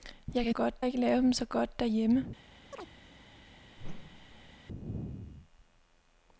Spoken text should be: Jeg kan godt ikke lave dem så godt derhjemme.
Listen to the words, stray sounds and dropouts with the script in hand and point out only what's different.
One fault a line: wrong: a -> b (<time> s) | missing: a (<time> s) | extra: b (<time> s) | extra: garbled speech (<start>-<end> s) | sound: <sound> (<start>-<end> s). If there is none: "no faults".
sound: chirp (2.7-2.9 s)
sound: whoosh (3.8-4.5 s)